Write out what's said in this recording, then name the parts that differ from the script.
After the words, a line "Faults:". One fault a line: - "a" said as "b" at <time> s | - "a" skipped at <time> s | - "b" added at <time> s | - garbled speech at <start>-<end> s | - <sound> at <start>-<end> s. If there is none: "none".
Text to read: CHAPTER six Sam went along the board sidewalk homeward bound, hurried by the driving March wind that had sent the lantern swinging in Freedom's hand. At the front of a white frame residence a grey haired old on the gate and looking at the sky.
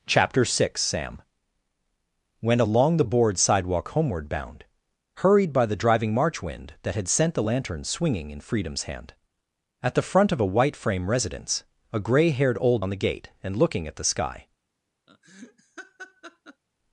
CHAPTER six Sam went along the board sidewalk homeward bound, hurried by the driving March wind that had sent the lantern swinging in Freedom's hand. At the front of a white frame residence a grey haired old on the gate and looking at the sky.
Faults:
- laugh at 15.1-16.6 s